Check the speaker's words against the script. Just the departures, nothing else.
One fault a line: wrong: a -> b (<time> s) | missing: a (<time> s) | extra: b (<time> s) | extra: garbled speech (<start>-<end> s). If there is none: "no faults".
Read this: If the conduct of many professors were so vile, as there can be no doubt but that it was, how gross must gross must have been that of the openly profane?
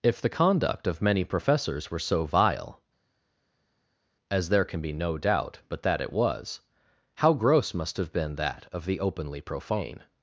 missing: gross must (8.0 s)